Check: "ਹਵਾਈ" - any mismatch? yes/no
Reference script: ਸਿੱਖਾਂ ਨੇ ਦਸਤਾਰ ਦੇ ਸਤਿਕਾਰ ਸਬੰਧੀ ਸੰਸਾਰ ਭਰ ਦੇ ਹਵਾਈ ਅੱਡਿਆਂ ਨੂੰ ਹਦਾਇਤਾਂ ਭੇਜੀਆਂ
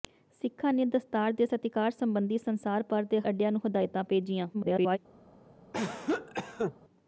yes